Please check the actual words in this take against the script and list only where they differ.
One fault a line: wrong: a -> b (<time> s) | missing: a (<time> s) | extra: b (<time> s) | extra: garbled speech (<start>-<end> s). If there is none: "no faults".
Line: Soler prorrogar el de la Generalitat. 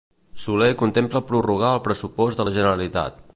extra: contempla (0.8 s)
extra: pressupost (1.9 s)